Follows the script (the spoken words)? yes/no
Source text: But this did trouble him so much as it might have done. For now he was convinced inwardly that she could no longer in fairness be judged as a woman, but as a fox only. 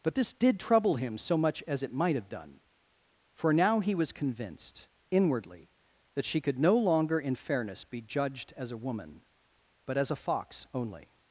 yes